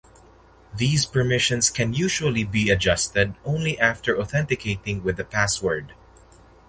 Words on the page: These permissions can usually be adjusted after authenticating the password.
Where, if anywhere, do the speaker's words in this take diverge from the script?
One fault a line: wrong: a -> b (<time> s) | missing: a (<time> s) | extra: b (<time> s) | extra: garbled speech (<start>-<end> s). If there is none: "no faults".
extra: only (3.5 s)
extra: with (5.0 s)